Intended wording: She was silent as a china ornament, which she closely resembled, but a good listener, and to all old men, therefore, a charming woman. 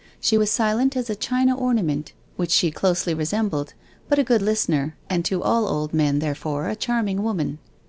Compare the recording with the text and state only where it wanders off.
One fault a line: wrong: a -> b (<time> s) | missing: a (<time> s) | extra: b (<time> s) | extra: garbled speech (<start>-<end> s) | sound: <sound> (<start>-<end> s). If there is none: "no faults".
no faults